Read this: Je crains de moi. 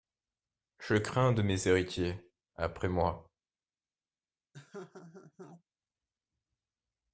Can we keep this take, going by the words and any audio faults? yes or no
no